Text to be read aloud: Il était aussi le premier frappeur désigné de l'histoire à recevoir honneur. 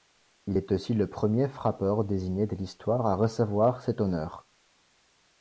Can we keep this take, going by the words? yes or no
no